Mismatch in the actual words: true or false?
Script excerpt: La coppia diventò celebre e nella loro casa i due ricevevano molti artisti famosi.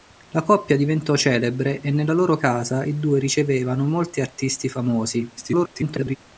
true